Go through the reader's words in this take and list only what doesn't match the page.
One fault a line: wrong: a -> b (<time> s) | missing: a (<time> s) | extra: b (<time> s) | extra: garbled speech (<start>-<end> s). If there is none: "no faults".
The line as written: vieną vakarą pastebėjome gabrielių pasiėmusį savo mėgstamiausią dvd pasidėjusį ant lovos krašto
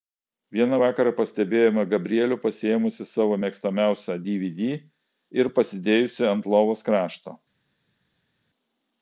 extra: ir (5.4 s)